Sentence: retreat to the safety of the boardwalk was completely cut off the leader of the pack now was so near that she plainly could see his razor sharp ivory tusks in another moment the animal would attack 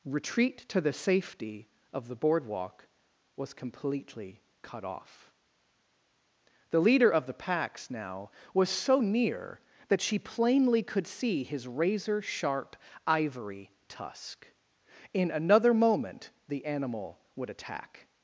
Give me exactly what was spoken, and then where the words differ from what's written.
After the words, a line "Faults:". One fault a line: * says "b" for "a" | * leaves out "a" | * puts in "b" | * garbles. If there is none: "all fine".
retreat to the safety of the boardwalk was completely cut off the leader of the packs now was so near that she plainly could see his razor sharp ivory tusk in another moment the animal would attack
Faults:
* says "packs" for "pack"
* says "tusk" for "tusks"